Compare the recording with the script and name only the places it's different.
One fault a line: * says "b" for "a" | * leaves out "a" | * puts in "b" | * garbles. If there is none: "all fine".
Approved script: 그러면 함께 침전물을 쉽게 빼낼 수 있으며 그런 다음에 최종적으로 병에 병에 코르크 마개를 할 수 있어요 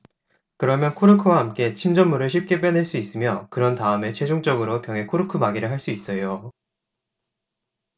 * puts in "코르크와"
* leaves out "병에"